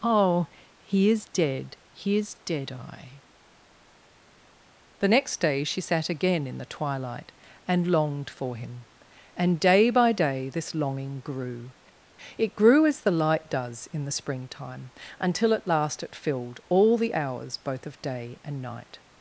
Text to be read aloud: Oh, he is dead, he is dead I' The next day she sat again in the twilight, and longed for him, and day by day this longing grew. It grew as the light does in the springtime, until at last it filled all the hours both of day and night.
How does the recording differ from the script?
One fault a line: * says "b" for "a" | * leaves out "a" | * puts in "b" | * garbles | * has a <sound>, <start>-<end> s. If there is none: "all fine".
all fine